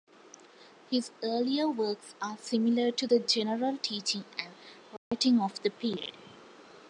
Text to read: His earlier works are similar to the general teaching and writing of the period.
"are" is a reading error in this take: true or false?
false